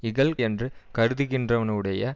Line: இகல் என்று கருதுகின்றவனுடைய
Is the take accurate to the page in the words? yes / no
yes